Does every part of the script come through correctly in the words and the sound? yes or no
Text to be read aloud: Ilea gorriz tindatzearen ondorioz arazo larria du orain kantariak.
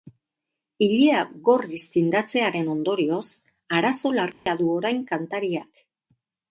no